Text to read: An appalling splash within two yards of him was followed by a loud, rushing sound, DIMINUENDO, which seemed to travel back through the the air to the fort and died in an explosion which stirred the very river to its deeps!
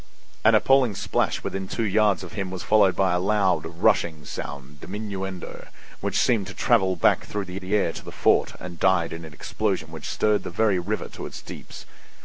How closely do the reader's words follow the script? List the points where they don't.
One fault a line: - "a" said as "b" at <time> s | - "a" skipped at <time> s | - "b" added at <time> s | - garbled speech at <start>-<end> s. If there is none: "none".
none